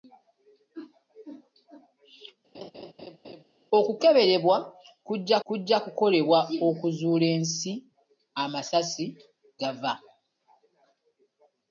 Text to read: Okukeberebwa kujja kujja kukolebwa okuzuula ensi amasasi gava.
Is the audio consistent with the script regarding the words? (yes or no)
yes